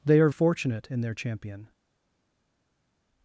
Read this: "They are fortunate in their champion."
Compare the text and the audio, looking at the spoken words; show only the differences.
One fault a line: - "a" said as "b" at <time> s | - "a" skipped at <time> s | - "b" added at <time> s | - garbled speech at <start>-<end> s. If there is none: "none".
none